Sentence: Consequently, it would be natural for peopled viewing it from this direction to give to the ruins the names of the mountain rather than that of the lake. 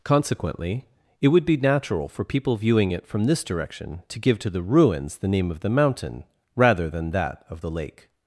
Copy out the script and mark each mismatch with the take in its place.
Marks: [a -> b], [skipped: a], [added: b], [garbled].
Consequently, it would be natural for [peopled -> people] viewing it from this direction to give to the ruins the [names -> name] of the mountain rather than that of the lake.